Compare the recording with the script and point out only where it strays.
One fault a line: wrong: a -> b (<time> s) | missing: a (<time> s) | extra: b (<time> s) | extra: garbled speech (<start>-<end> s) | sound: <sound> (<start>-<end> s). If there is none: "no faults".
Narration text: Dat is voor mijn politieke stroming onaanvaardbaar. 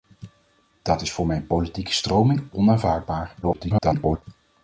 extra: garbled speech (3.4-4.2 s)